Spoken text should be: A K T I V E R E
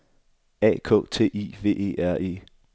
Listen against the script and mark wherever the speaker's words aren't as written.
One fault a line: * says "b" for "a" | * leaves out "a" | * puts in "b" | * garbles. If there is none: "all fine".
all fine